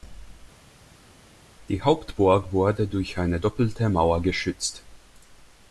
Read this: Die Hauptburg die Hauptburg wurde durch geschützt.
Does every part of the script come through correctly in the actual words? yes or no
no